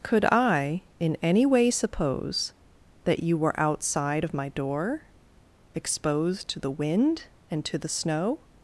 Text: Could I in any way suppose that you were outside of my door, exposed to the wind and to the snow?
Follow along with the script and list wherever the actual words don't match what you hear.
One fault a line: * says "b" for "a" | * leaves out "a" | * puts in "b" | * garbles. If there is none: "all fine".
all fine